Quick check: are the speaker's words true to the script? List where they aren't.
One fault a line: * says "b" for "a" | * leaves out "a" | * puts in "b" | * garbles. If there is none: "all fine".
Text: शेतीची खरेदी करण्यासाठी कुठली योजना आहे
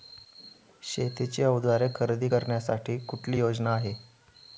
* puts in "अवजारे"